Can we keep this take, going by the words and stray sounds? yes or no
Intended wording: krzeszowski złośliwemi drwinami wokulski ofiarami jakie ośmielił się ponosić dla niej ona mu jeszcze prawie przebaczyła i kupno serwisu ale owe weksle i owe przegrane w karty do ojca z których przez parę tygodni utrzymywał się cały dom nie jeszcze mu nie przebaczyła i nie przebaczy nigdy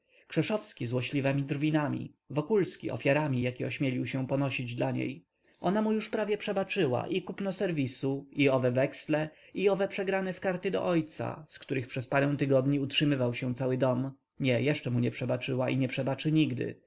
no